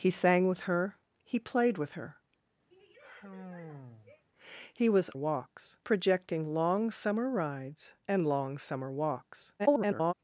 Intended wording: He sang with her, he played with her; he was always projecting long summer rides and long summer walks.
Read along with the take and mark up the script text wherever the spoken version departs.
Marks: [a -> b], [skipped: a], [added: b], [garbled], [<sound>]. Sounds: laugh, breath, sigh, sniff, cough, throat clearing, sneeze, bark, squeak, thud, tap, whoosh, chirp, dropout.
He sang with her, he played with her; [sigh] he was [always -> walks] projecting long summer rides and long summer walks. [garbled]